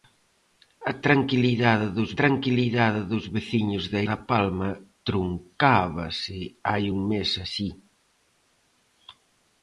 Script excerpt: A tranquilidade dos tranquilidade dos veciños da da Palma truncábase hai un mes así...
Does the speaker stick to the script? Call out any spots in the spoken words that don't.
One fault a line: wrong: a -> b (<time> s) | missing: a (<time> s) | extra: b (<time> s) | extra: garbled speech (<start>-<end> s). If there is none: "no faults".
no faults